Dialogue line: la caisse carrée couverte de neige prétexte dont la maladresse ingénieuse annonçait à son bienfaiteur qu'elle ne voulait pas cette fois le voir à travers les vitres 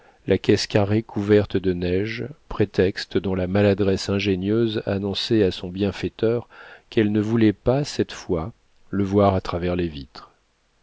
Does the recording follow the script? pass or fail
pass